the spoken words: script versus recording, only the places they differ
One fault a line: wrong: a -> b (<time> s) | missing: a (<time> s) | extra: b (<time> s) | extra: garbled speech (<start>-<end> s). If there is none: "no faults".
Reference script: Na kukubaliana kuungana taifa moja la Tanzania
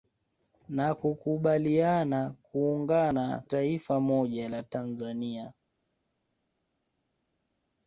no faults